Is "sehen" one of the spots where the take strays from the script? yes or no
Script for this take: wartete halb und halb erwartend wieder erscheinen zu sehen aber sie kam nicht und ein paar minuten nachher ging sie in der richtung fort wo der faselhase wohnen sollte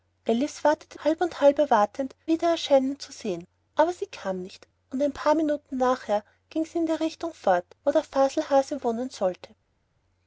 no